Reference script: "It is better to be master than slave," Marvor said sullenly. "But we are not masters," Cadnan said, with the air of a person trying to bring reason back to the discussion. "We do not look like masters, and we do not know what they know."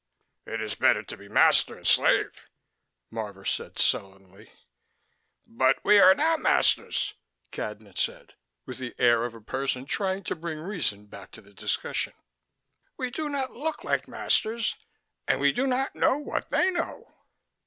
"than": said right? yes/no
no